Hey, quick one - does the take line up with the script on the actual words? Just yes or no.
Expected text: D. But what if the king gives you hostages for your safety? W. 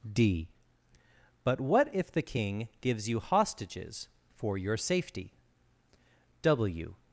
yes